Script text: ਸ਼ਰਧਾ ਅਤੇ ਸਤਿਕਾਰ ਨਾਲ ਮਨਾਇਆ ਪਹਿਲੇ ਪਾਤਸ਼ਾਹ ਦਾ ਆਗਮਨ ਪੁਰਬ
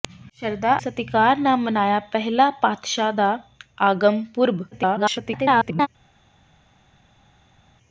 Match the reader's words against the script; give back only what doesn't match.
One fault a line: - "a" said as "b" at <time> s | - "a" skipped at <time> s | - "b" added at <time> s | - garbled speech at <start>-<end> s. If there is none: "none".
- "ਅਤੇ" skipped at 0.7 s
- garbled speech at 4.7-5.9 s